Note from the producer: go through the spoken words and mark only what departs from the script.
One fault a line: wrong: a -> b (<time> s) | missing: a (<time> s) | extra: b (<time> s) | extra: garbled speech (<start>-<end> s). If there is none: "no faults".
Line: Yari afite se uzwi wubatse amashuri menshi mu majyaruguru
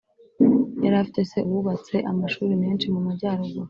missing: uzwi (1.4 s)